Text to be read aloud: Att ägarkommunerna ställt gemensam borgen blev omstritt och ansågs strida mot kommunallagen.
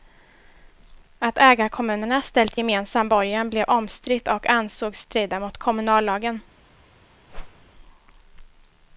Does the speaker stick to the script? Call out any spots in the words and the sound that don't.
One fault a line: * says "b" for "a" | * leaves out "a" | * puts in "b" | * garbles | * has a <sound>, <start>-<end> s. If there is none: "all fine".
* has a whoosh, 7.3-7.7 s